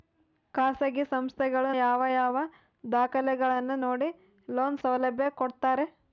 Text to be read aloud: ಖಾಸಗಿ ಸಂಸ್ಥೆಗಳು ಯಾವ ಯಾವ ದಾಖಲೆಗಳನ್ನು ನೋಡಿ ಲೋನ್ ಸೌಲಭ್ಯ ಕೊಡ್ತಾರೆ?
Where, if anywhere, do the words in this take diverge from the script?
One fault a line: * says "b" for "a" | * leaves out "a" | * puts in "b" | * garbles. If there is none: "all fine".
all fine